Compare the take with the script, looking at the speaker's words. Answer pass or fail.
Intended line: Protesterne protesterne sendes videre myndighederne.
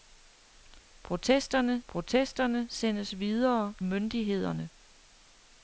pass